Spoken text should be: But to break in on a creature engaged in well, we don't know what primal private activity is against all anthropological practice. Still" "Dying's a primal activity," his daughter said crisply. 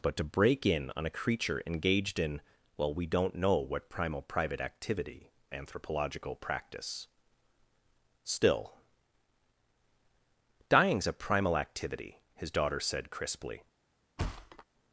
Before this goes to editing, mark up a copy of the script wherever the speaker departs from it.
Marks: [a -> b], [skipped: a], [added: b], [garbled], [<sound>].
But to break in on a creature engaged in well, we don't know what primal private activity [skipped: is against all] anthropological practice. Still" "Dying's a primal activity," his daughter said crisply. [thud]